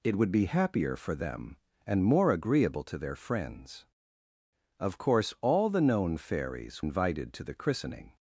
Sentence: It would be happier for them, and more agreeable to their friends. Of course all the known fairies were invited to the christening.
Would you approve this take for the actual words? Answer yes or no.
no